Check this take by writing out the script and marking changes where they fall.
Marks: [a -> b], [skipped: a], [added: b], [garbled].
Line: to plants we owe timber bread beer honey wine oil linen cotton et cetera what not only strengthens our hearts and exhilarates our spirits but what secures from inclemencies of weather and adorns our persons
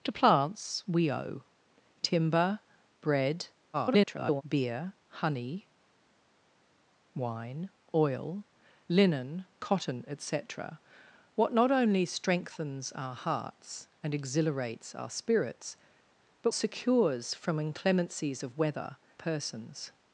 to plants we owe timber bread [garbled] beer honey wine oil linen cotton et cetera what not only strengthens our hearts and exhilarates our spirits but [skipped: what] secures from inclemencies of weather [skipped: and adorns our] persons